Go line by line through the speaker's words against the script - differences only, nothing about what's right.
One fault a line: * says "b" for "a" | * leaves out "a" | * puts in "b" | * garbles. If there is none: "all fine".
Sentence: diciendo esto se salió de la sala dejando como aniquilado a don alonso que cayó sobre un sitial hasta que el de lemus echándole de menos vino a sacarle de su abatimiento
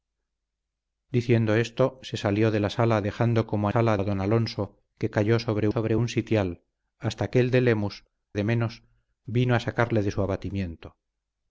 * says "sala" for "aniquilado"
* puts in "sobre"
* leaves out "echándole"